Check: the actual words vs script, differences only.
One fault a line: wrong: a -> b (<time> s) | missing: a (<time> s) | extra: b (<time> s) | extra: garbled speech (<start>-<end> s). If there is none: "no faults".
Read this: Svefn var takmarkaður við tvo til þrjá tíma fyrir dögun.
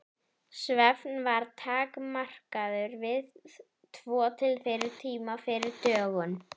wrong: þrjá -> fyrir (4.7 s)